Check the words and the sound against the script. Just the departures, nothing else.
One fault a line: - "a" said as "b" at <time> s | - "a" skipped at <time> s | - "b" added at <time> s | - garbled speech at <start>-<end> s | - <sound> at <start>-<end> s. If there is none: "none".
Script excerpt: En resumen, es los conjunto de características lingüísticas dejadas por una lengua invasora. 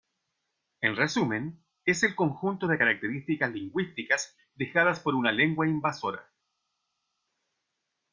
- "los" said as "el" at 2.0 s